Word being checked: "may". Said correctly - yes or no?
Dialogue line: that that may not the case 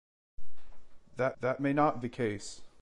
yes